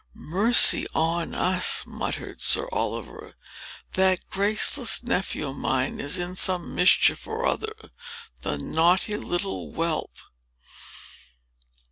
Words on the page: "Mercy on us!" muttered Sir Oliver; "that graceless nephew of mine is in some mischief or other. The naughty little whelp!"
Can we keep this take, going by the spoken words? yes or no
yes